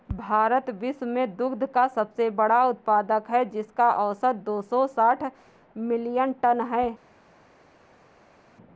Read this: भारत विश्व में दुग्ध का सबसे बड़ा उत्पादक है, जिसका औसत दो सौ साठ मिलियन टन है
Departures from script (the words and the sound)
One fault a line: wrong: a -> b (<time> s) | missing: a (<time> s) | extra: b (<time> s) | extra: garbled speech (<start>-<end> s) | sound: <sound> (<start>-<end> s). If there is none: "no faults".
no faults